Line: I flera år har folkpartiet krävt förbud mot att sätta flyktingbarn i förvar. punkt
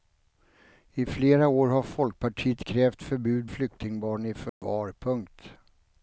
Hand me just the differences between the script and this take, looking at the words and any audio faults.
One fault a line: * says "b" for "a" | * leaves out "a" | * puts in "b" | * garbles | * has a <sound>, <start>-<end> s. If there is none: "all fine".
* leaves out "mot att sätta"
* has a dropout, 4.5-4.6 s